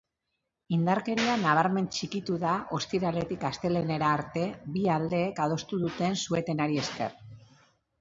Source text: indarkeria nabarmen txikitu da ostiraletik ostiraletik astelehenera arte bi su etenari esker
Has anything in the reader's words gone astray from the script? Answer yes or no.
yes